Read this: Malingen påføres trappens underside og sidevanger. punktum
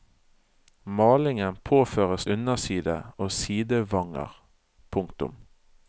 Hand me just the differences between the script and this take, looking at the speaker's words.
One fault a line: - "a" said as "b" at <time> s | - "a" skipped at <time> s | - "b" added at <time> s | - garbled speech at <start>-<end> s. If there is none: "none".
- "trappens" skipped at 2.2 s